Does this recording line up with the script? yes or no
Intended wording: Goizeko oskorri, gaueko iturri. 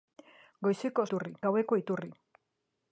no